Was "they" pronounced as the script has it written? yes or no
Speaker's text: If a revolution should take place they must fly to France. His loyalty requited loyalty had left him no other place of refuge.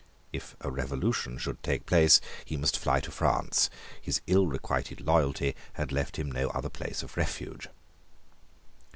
no